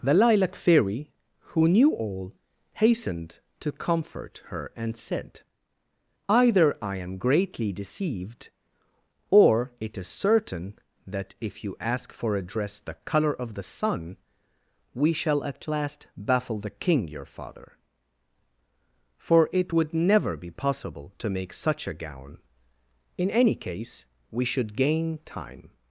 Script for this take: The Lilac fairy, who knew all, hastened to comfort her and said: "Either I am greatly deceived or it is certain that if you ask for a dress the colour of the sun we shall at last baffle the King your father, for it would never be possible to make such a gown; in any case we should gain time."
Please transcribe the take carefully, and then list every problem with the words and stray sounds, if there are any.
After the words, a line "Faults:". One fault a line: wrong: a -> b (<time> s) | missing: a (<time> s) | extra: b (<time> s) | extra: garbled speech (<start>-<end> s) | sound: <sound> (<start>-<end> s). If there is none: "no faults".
The Lilac fairy, who knew all, hastened to comfort her and said: "Either I am greatly deceived or it is certain that if you ask for a dress the colour of the sun we shall at last baffle the King your father, for it would never be possible to make such a gown; in any case we should gain time."
Faults:
no faults